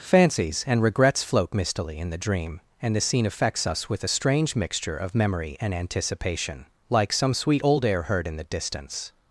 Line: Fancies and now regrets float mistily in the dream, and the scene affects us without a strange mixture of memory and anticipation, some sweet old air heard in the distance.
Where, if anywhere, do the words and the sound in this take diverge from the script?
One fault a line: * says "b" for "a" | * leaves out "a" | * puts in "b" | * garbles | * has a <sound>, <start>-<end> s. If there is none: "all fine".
* leaves out "now"
* says "with" for "without"
* puts in "like"